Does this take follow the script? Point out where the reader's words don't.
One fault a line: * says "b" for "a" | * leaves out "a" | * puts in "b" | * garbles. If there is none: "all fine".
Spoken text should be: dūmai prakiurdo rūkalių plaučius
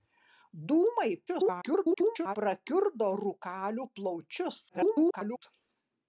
* garbles
* garbles